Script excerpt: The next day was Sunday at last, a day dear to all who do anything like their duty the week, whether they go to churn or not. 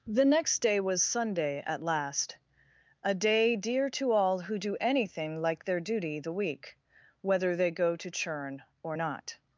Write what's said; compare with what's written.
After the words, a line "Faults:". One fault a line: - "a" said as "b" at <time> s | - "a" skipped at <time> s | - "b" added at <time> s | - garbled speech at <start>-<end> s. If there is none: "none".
The next day was Sunday at last, a day dear to all who do anything like their duty the week, whether they go to churn or not.
Faults:
none